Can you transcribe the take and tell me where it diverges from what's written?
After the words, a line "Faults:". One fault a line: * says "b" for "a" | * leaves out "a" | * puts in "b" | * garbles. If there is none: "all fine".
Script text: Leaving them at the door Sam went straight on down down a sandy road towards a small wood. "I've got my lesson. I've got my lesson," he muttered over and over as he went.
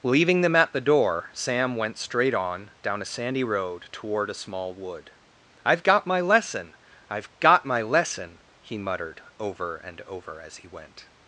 Leaving them at the door Sam went straight on down a sandy road toward a small wood. "I've got my lesson. I've got my lesson," he muttered over and over as he went.
Faults:
* leaves out "down"
* says "toward" for "towards"